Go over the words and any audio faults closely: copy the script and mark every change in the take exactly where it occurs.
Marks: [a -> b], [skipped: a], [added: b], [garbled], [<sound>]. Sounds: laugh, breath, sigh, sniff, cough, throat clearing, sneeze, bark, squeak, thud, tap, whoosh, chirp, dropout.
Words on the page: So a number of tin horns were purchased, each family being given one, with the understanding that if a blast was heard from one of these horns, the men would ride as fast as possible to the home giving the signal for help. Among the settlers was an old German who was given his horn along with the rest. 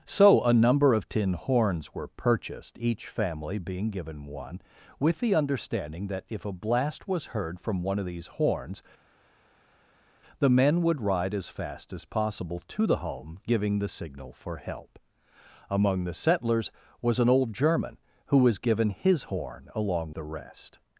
So a number of tin horns were purchased, each family being given one, with the understanding that if a blast was heard from one of these horns, the men would ride as fast as possible to the home giving the signal for help. Among the settlers was an old German who was given his horn along [skipped: with] the rest.